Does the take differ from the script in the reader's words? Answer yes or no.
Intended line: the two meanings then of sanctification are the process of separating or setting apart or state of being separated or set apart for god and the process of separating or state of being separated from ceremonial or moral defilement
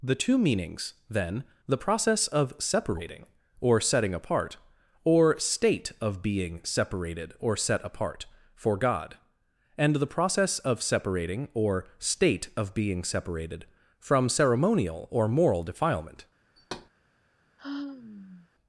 yes